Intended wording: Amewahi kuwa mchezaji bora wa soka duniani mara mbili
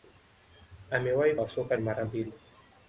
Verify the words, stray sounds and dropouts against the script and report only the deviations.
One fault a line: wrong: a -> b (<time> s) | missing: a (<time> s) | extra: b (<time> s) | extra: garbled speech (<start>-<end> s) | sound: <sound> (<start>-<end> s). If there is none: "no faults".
missing: kuwa mchezaji bora (1.4 s)
missing: duniani (1.8 s)